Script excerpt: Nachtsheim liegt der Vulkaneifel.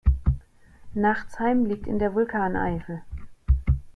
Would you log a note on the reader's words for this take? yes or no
yes